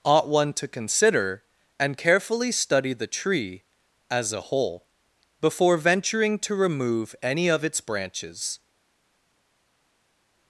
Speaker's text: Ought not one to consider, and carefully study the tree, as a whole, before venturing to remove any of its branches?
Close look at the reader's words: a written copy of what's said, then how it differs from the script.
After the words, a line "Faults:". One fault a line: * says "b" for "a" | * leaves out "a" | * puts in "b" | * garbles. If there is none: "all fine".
Ought one to consider, and carefully study the tree, as a whole, before venturing to remove any of its branches?
Faults:
* leaves out "not"